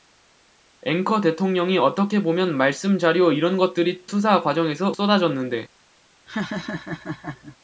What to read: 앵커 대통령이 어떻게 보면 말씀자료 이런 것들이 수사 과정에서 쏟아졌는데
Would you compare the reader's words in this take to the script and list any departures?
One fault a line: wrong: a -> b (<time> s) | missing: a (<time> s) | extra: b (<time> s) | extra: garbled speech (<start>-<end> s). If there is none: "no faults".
no faults